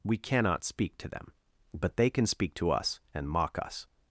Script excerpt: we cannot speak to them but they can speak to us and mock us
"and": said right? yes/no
yes